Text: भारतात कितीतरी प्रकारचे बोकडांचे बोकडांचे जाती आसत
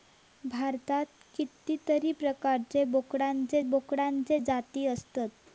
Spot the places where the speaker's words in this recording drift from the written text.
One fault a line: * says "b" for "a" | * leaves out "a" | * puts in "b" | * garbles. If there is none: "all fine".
all fine